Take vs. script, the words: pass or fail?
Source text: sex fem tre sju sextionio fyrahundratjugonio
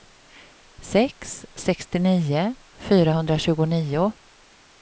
fail